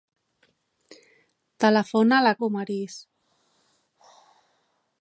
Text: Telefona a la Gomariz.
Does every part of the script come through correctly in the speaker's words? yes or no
yes